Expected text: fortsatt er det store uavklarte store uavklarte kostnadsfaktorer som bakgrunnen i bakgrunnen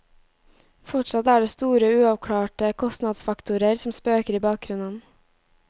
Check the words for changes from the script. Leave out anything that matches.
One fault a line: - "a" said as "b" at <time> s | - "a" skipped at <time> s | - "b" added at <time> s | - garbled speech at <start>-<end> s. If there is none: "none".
- "store uavklarte" skipped at 2.7 s
- "bakgrunnen" said as "spøker" at 4.0 s